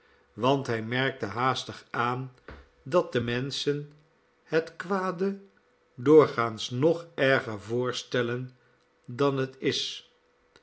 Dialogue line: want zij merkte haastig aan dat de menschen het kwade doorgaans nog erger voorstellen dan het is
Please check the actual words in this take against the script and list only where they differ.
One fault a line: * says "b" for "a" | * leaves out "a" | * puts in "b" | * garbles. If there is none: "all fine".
* says "hij" for "zij"